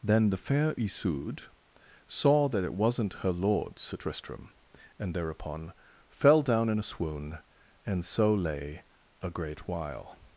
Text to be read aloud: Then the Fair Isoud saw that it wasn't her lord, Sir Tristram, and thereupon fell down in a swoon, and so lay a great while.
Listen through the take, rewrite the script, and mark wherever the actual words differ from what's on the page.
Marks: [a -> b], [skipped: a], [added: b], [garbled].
Then the Fair Isoud saw that it wasn't her lord, Sir Tristram, and thereupon fell down in a swoon, and so lay a great while.